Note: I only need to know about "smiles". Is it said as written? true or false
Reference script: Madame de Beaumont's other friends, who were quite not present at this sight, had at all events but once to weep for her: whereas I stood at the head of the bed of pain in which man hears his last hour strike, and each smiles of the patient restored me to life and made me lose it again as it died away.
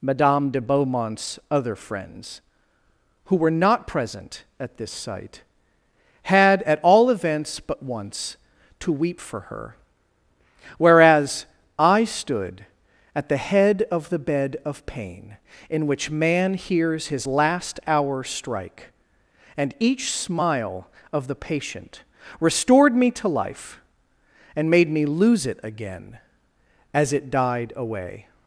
false